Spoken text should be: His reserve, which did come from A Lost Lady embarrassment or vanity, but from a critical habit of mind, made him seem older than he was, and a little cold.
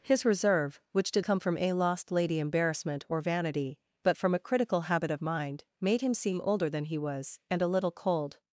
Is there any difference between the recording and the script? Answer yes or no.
no